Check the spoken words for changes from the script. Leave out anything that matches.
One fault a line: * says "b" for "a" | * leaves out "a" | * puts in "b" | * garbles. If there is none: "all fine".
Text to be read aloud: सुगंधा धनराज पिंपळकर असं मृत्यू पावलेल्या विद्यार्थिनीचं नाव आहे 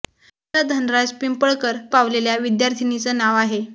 * leaves out "असं मृत्यू"